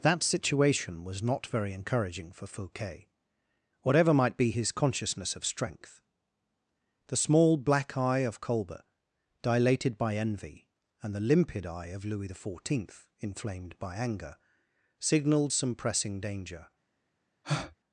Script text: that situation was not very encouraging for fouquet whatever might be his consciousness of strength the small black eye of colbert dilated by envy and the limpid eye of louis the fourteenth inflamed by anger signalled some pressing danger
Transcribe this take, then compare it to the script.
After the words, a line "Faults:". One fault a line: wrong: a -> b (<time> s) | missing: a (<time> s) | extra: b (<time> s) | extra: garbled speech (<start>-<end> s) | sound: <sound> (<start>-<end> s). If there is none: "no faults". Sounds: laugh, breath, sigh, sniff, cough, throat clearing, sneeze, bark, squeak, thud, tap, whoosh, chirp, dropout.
that situation was not very encouraging for fouquet whatever might be his consciousness of strength the small black eye of colbert dilated by envy and the limpid eye of louis the fourteenth inflamed by anger signalled some pressing danger
Faults:
sound: breath (17.4-17.8 s)